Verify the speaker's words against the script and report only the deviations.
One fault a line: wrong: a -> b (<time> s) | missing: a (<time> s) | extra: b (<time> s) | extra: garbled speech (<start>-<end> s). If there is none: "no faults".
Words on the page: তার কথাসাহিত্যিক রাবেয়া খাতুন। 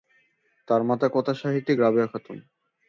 extra: মাতা (0.8 s)